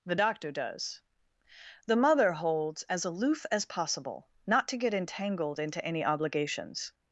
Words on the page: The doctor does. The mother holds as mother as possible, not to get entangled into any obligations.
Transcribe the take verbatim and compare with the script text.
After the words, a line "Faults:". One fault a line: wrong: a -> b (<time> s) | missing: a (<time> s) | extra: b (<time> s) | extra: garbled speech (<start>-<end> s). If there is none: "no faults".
The doctor does. The mother holds as aloof as possible, not to get entangled into any obligations.
Faults:
wrong: mother -> aloof (3.0 s)